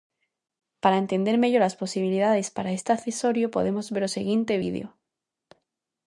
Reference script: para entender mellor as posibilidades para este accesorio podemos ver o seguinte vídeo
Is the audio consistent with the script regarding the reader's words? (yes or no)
yes